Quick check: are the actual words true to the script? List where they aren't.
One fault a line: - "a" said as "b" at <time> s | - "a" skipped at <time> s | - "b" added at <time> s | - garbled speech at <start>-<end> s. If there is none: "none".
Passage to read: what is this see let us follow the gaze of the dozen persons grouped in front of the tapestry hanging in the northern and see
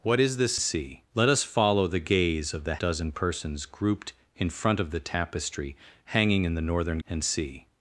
none